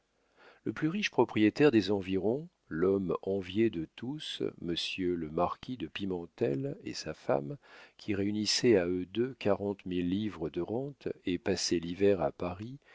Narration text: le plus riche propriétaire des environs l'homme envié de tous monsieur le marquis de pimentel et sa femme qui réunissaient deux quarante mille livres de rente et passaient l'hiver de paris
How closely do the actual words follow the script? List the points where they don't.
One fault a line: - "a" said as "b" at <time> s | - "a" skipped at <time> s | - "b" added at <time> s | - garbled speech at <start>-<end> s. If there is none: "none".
- "à eux" added at 8.8 s
- "de" said as "à" at 12.2 s